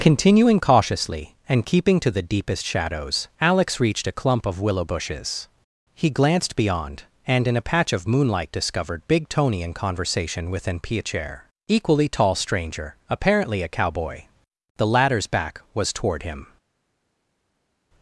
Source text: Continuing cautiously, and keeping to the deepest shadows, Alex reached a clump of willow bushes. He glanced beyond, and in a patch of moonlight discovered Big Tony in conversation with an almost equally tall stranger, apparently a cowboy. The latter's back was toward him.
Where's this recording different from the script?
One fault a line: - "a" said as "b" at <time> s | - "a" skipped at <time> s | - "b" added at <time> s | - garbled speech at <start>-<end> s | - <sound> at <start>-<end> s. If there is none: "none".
- "almost" said as "piacere" at 10.8 s